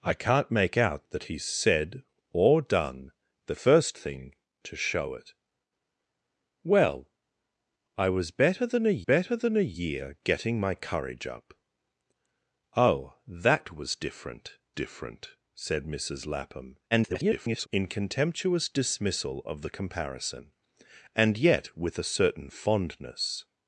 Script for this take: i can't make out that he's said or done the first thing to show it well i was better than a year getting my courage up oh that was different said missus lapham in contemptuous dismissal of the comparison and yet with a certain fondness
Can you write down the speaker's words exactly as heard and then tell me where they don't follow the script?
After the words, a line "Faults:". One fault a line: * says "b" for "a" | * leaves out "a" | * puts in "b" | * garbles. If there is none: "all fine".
i can't make out that he's said or done the first thing to show it well i was better than a better than a year getting my courage up oh that was different different said missus lapham [garbled] in contemptuous dismissal of the comparison and yet with a certain fondness
Faults:
* puts in "better than a"
* puts in "different"
* garbles